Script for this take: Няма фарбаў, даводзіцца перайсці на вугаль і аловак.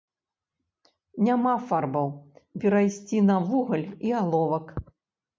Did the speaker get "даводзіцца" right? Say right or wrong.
wrong